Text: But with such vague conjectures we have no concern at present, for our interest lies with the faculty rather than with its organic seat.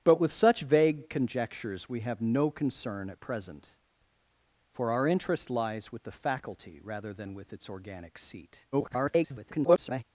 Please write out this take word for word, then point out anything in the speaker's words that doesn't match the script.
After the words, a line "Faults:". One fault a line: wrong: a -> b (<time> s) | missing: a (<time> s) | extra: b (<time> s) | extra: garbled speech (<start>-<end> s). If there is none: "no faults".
But with such vague conjectures we have no concern at present, for our interest lies with the faculty rather than with its organic seat. [garbled]
Faults:
extra: garbled speech (8.7-10.0 s)